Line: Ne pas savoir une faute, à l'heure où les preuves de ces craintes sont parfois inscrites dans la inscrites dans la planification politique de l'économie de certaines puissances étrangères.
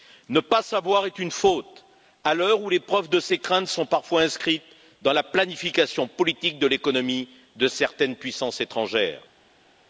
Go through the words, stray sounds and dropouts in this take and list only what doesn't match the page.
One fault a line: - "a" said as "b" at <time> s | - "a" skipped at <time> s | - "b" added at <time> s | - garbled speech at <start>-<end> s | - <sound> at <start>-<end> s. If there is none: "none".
- "est" added at 1.1 s
- "inscrites dans la" skipped at 5.2 s